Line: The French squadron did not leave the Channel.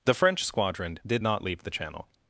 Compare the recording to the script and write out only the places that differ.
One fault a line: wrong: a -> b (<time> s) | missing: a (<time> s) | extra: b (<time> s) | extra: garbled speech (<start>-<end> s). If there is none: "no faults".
no faults